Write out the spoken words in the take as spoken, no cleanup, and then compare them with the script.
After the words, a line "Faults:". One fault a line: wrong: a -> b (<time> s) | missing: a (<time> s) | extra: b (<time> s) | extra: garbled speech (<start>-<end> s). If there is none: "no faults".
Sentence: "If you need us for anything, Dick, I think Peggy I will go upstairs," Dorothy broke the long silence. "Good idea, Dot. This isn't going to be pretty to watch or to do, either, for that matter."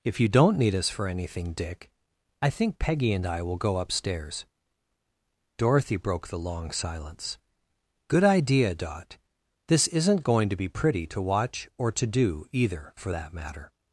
"If you don't need us for anything, Dick, I think Peggy and I will go upstairs," Dorothy broke the long silence. "Good idea, Dot. This isn't going to be pretty to watch or to do, either, for that matter."
Faults:
extra: don't (0.3 s)
extra: and (3.1 s)